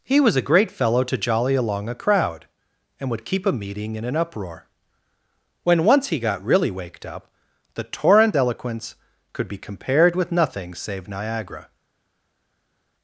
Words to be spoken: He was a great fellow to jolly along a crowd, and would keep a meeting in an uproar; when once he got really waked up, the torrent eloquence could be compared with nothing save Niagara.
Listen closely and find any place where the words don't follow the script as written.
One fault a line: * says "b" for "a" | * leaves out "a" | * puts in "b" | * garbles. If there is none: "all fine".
all fine